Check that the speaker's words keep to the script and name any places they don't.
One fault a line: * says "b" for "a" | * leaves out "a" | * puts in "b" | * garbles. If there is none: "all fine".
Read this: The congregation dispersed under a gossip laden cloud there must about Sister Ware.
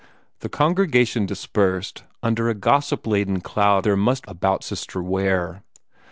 all fine